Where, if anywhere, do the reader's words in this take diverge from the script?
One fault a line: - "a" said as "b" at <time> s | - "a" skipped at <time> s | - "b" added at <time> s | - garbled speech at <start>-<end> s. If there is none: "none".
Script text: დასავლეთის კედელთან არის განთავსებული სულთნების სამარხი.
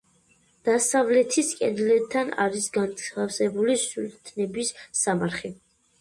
none